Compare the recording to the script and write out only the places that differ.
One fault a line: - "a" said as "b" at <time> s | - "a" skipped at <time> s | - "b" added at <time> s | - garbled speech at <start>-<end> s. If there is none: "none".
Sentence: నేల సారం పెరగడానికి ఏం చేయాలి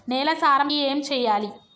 - "పెరగడానికి" skipped at 0.7 s